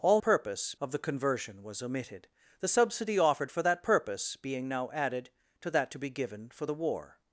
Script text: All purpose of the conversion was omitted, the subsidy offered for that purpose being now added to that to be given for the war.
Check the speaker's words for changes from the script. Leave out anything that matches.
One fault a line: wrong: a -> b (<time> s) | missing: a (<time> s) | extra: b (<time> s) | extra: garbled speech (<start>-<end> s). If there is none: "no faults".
no faults